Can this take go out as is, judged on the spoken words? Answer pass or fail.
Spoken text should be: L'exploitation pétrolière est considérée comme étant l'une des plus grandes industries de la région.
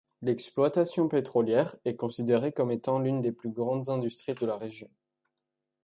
pass